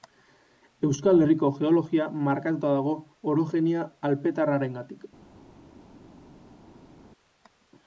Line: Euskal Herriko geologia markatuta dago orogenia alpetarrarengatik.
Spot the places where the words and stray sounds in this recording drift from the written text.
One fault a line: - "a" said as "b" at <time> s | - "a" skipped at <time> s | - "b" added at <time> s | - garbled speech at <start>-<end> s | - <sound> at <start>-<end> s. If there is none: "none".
none